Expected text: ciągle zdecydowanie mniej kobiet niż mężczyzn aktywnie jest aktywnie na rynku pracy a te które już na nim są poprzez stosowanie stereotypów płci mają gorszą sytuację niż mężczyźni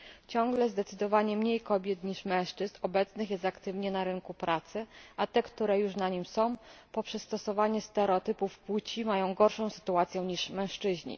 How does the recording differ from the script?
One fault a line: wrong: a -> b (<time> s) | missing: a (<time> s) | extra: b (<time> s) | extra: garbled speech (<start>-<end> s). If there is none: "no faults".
wrong: aktywnie -> obecnych (2.8 s)